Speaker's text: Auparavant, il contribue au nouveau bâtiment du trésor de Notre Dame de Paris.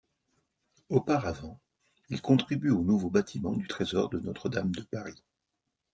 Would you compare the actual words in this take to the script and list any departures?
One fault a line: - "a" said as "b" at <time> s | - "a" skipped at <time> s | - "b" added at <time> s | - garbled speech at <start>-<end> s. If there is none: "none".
none